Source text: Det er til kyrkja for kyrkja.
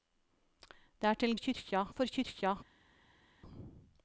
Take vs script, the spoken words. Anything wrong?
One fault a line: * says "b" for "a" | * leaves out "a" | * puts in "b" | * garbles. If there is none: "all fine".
all fine